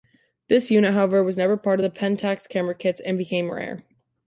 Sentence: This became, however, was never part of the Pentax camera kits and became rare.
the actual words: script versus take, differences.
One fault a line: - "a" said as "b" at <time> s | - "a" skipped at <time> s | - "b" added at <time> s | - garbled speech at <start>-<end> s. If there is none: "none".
- "became" said as "unit" at 0.7 s